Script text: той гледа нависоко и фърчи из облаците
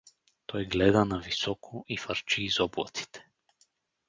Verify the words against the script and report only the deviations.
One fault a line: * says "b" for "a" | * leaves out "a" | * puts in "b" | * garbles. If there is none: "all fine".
all fine